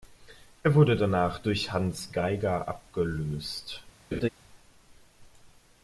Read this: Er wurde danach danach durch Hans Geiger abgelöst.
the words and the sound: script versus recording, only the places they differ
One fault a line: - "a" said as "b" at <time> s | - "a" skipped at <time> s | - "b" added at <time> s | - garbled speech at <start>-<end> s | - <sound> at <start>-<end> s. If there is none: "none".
- "danach" skipped at 1.4 s
- laugh at 4.1-4.3 s